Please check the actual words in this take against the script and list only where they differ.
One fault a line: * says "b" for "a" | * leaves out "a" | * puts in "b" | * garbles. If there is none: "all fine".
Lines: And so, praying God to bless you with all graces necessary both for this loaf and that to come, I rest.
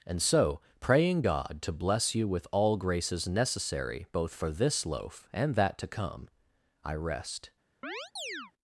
all fine